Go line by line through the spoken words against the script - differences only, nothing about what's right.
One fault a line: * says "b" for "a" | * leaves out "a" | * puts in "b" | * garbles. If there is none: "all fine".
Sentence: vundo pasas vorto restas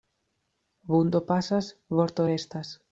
all fine